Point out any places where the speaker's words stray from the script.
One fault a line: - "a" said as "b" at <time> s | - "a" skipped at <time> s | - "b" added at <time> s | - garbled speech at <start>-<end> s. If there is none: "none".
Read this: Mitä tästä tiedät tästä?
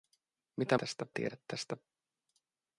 none